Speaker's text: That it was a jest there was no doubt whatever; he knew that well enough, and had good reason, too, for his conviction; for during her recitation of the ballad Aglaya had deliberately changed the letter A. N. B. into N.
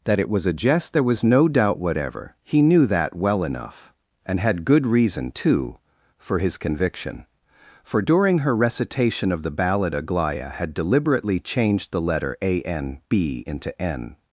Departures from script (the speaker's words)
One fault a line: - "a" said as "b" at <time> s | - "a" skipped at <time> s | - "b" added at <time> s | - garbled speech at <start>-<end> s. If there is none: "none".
none